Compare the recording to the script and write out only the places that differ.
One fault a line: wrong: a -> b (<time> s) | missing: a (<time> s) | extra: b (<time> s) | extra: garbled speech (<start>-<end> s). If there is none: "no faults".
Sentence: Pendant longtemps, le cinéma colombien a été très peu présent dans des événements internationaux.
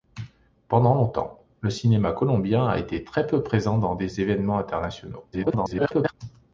extra: garbled speech (5.3-6.1 s)